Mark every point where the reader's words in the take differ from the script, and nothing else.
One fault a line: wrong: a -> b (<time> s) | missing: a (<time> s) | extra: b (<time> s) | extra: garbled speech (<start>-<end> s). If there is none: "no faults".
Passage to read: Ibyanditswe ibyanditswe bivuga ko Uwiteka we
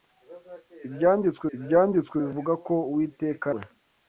no faults